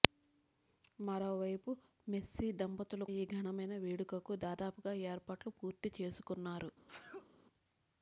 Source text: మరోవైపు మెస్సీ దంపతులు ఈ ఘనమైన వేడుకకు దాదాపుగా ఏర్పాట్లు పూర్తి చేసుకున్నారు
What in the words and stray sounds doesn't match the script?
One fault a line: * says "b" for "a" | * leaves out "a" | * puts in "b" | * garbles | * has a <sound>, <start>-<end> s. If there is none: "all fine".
* has a sneeze, 6.9-7.3 s